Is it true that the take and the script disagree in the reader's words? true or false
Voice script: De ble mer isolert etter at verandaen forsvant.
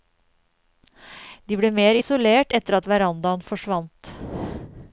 false